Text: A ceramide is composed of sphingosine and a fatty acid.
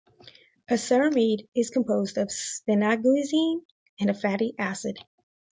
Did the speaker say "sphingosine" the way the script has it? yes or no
yes